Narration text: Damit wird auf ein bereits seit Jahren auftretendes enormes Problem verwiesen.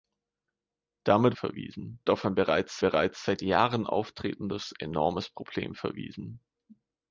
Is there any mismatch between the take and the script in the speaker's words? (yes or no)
yes